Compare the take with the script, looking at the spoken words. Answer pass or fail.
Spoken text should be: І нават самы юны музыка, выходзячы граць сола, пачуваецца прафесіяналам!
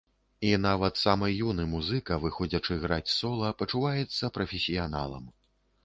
pass